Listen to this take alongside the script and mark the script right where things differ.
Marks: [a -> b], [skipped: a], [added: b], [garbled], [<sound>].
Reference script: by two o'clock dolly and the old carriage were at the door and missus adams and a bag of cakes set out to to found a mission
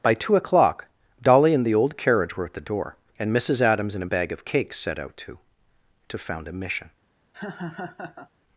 by two o'clock dolly and the old carriage were at the door and missus adams and a bag of cakes set out to to found a mission [laugh]